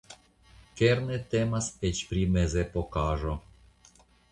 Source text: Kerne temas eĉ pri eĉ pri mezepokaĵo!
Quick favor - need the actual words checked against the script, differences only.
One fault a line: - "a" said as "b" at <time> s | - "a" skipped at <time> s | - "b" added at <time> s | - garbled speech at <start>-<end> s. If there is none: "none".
- "eĉ pri" skipped at 2.2 s